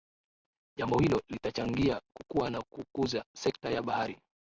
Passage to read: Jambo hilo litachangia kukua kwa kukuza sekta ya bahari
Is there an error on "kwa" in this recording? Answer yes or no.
yes